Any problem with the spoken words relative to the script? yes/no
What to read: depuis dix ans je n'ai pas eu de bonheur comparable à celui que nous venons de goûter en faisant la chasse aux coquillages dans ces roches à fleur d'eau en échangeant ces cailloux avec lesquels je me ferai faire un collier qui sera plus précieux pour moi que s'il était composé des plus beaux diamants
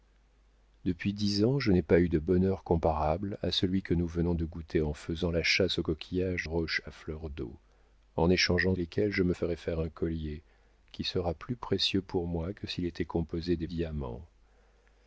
yes